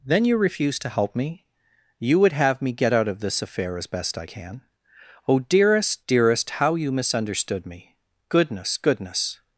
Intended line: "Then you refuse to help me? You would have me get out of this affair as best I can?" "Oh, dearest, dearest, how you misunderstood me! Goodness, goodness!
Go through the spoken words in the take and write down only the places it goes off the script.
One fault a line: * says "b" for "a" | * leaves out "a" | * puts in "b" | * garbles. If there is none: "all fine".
all fine